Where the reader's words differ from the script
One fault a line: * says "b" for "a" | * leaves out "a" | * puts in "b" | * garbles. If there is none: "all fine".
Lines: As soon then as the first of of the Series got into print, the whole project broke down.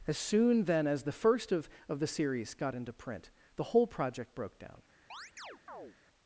all fine